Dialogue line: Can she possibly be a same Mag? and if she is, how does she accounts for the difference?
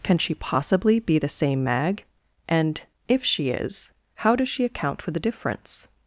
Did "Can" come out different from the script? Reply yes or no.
no